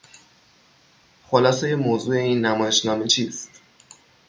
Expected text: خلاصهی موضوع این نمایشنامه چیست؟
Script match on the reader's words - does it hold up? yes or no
yes